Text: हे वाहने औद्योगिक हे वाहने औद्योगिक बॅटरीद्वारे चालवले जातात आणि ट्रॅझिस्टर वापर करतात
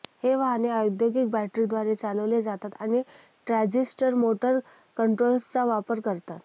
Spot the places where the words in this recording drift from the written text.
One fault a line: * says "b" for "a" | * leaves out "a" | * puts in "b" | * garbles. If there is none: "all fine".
* leaves out "हे वाहने औद्योगिक"
* puts in "मोटर कंट्रोलर्सचा"